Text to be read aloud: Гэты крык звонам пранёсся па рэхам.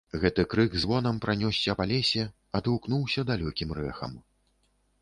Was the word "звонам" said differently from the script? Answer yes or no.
no